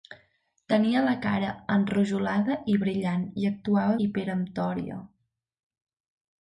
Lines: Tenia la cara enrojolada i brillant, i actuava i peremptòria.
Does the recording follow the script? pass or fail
pass